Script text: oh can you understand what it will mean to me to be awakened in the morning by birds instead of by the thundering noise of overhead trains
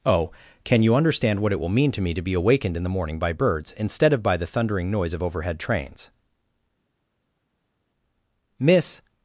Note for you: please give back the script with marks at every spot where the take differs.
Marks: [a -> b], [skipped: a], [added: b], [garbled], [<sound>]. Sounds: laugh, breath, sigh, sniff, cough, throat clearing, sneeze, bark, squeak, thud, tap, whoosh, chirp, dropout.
oh can you understand what it will mean to me to be awakened in the morning by birds instead of by the thundering noise of overhead trains [added: miss]